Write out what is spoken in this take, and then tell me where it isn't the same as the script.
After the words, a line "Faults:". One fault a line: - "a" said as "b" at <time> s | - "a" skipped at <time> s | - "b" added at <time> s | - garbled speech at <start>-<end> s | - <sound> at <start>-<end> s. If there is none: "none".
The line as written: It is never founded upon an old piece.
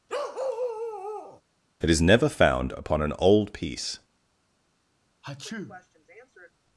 It is never found upon an old piece.
Faults:
- bark at 0.1-1.4 s
- "founded" said as "found" at 2.3 s
- sneeze at 5.2-6.5 s